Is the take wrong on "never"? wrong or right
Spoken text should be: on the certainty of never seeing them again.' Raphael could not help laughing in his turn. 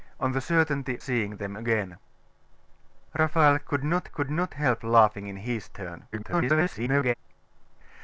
wrong